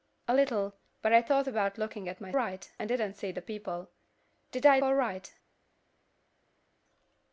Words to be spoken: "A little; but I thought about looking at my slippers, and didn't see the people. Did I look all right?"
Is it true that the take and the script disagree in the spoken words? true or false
true